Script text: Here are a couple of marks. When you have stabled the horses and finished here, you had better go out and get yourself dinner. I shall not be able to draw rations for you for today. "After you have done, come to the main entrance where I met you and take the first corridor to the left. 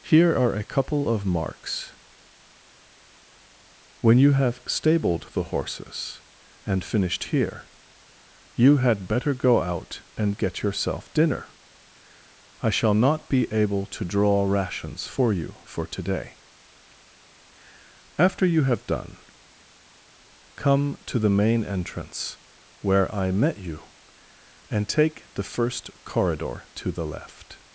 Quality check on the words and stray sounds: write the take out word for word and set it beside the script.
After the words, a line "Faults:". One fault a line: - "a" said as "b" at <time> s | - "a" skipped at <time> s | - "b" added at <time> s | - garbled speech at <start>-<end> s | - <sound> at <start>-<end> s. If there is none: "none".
Here are a couple of marks. When you have stabled the horses and finished here, you had better go out and get yourself dinner. I shall not be able to draw rations for you for today. "After you have done, come to the main entrance where I met you and take the first corridor to the left.
Faults:
none